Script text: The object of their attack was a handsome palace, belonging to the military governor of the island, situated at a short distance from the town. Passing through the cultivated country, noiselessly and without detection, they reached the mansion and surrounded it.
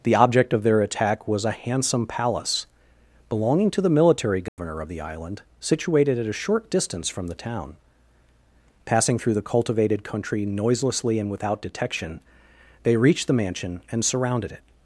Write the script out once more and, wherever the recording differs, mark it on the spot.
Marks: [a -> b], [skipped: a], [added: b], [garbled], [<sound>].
The object of their attack was a handsome palace, belonging to the military governor [dropout] of the island, situated at a short distance from the town. Passing through the cultivated country, noiselessly and without detection, they reached the mansion and surrounded it.